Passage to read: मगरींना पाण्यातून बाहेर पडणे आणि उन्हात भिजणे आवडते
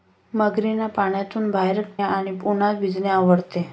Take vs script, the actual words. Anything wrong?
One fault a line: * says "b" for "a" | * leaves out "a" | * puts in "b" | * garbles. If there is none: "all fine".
* leaves out "पडणे"